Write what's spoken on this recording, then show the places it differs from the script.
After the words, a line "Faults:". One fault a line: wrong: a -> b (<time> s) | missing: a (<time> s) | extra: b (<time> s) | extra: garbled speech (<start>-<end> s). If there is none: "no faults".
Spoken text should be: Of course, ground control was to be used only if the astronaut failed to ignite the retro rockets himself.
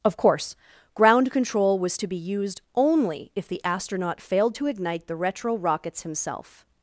Of course, ground control was to be used only if the astronaut failed to ignite the retro rockets himself.
Faults:
no faults